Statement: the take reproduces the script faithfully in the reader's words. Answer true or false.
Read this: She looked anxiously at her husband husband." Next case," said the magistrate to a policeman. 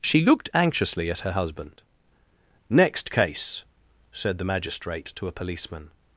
false